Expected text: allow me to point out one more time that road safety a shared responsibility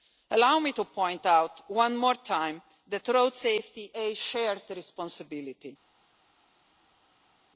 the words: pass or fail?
pass